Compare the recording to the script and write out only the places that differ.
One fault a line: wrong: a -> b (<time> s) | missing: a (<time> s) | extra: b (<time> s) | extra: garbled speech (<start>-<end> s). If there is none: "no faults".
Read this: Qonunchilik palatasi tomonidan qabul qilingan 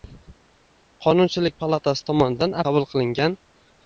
no faults